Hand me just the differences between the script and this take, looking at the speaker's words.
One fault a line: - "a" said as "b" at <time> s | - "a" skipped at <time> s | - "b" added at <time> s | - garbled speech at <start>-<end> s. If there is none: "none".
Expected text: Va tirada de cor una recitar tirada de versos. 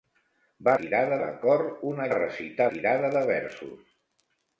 none